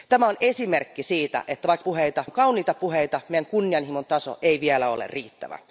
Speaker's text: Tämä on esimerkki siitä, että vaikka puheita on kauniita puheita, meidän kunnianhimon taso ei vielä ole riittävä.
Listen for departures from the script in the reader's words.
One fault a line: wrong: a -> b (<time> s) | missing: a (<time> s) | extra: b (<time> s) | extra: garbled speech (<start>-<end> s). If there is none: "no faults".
no faults